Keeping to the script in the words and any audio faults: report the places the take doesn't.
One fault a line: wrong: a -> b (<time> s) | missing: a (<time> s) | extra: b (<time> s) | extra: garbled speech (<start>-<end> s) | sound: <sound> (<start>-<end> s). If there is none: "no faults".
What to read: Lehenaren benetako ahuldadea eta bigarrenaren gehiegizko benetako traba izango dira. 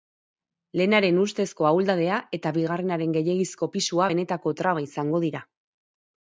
wrong: benetako -> ustezko (1.2 s)
extra: pisua (3.8 s)